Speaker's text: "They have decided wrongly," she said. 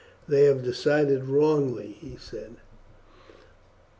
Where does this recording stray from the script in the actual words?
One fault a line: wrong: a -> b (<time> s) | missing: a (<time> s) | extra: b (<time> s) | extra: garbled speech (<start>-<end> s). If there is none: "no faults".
wrong: she -> he (2.0 s)